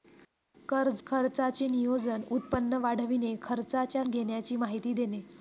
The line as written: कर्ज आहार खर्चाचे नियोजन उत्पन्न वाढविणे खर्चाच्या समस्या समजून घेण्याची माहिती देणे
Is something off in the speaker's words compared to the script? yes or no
yes